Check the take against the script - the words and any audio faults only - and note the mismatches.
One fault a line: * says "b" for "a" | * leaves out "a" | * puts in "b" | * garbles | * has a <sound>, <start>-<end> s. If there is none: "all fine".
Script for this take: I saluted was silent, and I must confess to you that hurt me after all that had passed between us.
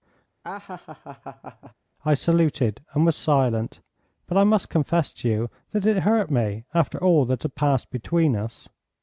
* has a laugh, 0.4-1.7 s
* puts in "and"
* says "but" for "and"
* puts in "it"